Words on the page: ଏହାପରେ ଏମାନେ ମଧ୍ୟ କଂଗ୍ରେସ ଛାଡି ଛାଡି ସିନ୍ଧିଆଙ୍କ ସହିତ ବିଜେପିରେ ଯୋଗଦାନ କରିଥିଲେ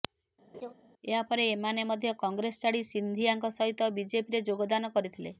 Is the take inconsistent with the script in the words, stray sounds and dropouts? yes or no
yes